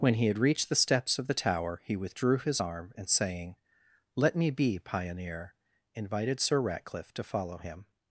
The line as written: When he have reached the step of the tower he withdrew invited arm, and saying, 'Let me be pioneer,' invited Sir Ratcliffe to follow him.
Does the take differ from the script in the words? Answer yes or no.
yes